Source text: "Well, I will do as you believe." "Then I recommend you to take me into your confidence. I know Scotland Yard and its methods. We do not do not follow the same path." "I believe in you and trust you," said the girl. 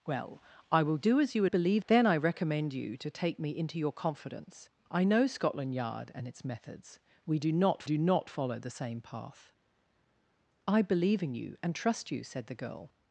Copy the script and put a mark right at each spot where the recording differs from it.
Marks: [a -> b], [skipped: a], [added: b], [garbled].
"Well, I will do as you believe." "Then I recommend you to take me into your confidence. I know Scotland Yard and its methods. We do not do not follow the same path." "I believe in you and trust you," said the girl.